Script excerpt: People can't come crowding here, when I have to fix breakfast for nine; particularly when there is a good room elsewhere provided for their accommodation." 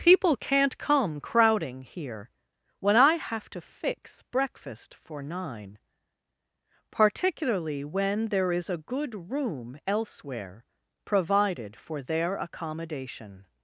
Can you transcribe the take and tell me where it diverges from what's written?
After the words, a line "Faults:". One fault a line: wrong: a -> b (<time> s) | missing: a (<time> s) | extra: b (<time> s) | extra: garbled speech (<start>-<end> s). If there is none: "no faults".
People can't come crowding here, when I have to fix breakfast for nine; particularly when there is a good room elsewhere provided for their accommodation."
Faults:
no faults